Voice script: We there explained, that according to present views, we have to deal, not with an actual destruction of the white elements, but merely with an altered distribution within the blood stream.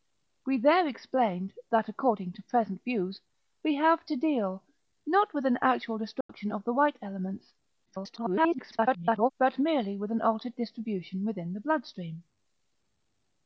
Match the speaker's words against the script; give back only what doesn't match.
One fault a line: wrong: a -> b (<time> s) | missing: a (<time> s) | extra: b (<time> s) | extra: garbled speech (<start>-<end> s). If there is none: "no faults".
extra: garbled speech (7.9-9.3 s)